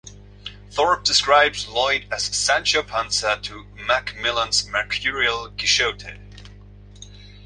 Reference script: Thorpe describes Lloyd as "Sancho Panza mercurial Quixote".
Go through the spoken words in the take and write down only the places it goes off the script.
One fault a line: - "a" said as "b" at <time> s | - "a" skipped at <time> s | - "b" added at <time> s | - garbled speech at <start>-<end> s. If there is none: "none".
- "to Macmillan's" added at 3.4 s